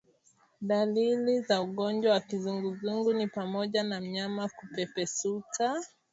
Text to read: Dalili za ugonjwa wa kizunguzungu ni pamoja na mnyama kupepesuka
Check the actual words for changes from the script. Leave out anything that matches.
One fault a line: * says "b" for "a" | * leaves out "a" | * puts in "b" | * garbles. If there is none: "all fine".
all fine